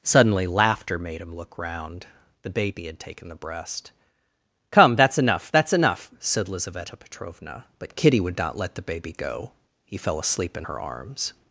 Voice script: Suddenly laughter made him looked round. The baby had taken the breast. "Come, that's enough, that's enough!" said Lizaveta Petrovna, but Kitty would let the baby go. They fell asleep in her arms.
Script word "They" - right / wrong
wrong